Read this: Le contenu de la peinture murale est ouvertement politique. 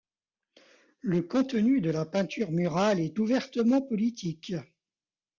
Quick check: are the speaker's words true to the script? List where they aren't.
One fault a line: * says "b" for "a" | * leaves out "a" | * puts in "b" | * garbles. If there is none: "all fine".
all fine